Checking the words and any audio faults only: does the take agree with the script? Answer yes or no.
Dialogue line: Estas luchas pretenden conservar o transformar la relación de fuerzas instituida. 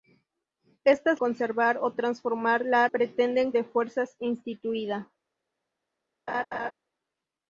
no